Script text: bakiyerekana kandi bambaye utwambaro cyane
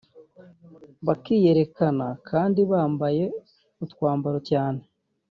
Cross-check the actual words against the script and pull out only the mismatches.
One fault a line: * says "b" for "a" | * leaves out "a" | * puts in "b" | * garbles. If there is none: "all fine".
all fine